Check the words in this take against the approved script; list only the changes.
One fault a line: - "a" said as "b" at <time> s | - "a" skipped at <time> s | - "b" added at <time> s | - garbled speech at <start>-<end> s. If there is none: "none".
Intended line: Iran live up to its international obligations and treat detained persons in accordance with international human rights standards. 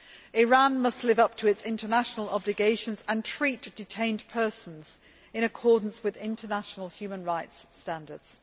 - "must" added at 0.8 s